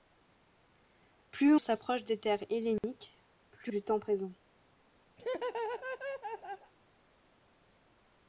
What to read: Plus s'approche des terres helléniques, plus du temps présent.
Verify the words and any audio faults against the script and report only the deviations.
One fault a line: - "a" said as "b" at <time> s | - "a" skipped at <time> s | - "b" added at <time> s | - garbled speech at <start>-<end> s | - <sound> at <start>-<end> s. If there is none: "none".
- dropout at 2.8-2.8 s
- laugh at 5.2-6.7 s